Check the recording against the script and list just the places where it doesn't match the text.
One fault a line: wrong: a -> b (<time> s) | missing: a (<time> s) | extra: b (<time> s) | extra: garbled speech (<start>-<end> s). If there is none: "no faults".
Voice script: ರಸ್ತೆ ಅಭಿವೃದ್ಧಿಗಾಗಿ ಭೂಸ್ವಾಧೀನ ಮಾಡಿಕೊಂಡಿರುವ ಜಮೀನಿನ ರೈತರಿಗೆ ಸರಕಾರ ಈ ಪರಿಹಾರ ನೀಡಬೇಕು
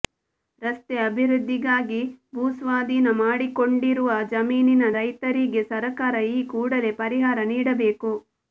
extra: ಕೂಡಲೇ (6.5 s)